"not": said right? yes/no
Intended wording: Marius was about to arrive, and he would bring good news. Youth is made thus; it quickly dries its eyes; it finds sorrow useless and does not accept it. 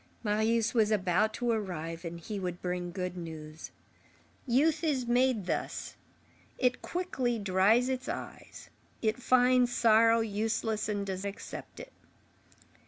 no